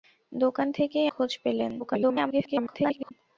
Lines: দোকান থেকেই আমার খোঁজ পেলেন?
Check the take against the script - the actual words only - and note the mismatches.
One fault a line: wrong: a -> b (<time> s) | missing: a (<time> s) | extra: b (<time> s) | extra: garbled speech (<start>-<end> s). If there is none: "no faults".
missing: আমার (1.1 s)
extra: garbled speech (1.8-3.1 s)